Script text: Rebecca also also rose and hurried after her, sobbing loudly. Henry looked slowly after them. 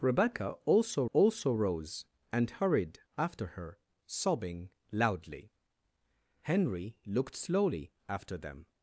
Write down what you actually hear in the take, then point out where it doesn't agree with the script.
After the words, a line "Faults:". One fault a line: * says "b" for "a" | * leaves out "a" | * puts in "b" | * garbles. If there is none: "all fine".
Rebecca also also rose and hurried after her, sobbing loudly. Henry looked slowly after them.
Faults:
all fine